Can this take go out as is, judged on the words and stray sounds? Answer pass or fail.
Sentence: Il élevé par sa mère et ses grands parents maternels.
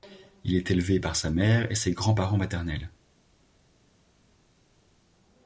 fail